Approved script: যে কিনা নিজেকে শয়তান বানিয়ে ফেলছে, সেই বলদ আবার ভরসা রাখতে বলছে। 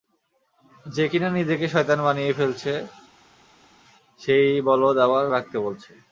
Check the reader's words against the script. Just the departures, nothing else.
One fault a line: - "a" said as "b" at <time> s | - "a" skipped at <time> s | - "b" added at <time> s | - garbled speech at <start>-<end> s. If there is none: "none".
- "ভরসা" skipped at 5.2 s